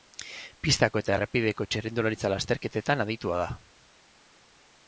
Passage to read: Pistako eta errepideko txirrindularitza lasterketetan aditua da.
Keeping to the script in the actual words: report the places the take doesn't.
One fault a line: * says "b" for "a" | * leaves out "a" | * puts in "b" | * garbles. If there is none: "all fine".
all fine